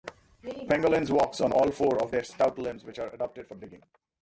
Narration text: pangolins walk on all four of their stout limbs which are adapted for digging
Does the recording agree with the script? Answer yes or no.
yes